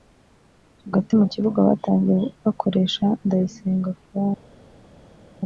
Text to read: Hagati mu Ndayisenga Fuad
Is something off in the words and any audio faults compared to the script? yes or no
yes